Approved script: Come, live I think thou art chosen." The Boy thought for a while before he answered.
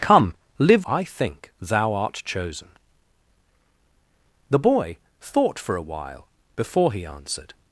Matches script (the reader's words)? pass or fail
pass